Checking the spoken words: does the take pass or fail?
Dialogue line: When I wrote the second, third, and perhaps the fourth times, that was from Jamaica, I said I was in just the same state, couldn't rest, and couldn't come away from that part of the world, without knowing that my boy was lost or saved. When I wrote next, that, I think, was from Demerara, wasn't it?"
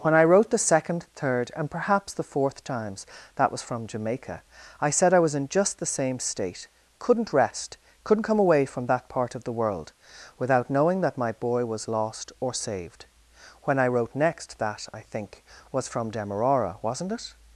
fail